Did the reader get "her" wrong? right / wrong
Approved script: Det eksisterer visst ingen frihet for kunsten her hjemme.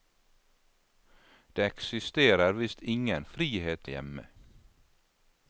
wrong